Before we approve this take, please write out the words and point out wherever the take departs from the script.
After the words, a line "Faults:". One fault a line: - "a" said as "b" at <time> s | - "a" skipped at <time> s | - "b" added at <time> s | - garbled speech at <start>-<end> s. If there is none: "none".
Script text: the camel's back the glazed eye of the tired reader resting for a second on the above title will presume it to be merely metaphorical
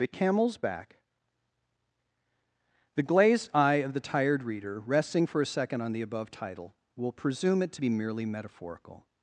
the camel's back the glazed eye of the tired reader resting for a second on the above title will presume it to be merely metaphorical
Faults:
none